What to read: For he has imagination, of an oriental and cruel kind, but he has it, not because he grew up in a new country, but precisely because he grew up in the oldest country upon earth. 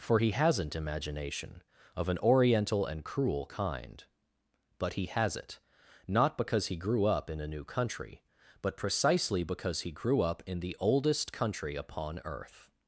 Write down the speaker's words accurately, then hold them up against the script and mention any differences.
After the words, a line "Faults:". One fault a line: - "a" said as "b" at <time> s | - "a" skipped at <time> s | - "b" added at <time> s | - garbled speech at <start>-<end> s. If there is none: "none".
For he hasn't imagination, of an oriental and cruel kind, but he has it, not because he grew up in a new country, but precisely because he grew up in the oldest country upon earth.
Faults:
- "has" said as "hasn't" at 0.3 s